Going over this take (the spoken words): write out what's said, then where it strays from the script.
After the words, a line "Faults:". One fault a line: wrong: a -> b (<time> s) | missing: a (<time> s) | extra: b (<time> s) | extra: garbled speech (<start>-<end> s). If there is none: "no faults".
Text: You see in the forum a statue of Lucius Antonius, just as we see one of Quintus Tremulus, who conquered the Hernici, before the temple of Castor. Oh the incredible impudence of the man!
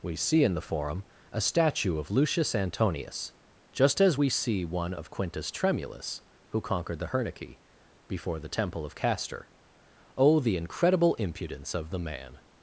We see in the forum a statue of Lucius Antonius, just as we see one of Quintus Tremulus, who conquered the Hernici, before the temple of Castor. Oh the incredible impudence of the man!
Faults:
wrong: You -> We (0.0 s)